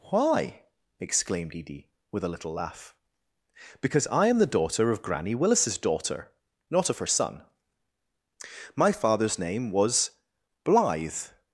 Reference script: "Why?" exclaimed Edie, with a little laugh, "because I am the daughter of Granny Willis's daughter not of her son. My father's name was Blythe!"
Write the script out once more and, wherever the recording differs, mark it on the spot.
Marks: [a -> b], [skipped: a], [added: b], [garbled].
"Why?" exclaimed Edie, with a little laugh, "because I am the daughter of Granny Willis's daughter not of her son. My father's name was Blythe!"